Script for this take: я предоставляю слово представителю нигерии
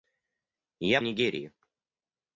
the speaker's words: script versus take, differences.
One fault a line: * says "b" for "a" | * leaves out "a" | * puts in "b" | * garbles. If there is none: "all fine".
* leaves out "предоставляю слово представителю"